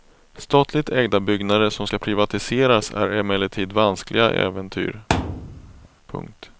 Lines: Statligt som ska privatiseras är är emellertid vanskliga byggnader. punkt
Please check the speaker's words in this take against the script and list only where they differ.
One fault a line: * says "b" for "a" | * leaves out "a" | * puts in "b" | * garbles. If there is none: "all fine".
* puts in "ägda byggnader"
* leaves out "är"
* says "äventyr" for "byggnader"